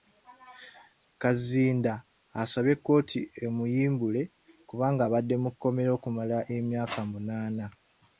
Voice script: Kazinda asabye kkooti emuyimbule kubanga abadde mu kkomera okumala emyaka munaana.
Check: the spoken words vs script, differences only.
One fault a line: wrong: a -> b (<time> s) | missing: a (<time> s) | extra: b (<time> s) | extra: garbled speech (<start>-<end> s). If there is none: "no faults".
no faults